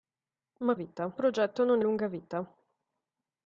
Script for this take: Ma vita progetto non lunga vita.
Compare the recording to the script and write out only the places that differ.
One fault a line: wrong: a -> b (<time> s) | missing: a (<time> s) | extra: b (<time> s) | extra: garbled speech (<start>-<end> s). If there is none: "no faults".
no faults